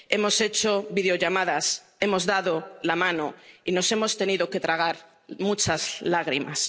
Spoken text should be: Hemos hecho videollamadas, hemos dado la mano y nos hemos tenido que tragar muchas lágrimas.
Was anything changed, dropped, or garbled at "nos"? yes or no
no